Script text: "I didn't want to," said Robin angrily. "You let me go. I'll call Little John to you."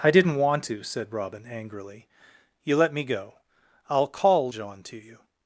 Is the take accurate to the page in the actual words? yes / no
no